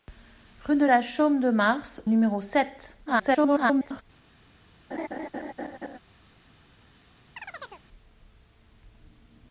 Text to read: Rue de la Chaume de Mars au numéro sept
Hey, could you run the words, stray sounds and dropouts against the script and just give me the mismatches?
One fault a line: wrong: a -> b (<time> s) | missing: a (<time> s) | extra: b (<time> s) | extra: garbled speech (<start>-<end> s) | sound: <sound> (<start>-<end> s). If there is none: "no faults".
missing: au (2.0 s)
extra: garbled speech (3.1-4.0 s)
sound: laugh (4.9-6.0 s)
sound: chirp (7.4-7.9 s)